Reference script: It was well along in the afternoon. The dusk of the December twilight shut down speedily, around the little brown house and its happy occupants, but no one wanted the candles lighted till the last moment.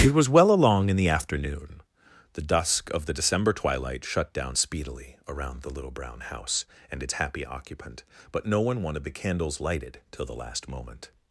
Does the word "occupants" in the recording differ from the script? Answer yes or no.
yes